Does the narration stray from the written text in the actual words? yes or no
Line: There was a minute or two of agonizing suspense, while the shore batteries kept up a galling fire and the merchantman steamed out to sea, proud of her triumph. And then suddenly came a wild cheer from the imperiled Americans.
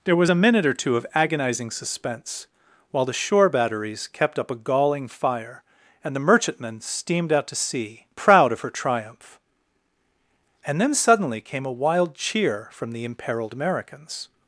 no